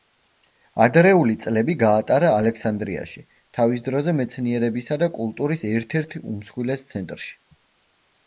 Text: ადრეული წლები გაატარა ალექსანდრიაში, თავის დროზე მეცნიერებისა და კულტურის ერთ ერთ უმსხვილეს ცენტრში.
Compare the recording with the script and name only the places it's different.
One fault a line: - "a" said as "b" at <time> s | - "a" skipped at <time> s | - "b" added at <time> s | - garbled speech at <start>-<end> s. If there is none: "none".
none